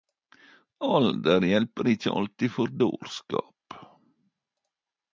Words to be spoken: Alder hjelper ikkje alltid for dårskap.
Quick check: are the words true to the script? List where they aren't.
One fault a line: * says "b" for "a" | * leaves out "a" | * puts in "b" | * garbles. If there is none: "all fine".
all fine